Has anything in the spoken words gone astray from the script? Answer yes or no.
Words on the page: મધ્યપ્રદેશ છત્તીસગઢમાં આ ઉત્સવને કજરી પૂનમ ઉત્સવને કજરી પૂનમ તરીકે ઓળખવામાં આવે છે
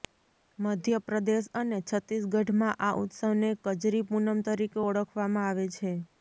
yes